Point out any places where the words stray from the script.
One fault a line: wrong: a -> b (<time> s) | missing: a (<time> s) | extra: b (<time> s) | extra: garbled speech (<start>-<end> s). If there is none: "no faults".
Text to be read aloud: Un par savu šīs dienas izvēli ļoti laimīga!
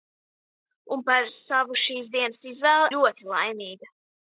no faults